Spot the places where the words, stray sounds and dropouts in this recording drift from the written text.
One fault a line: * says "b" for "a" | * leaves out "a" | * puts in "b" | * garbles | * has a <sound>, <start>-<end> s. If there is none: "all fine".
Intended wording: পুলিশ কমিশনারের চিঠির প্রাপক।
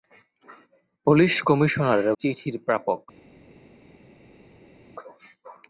all fine